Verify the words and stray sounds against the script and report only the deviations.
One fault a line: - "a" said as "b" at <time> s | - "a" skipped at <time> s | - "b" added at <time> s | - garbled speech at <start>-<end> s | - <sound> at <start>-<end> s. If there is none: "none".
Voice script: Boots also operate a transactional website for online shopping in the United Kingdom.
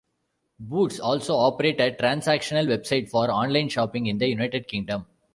none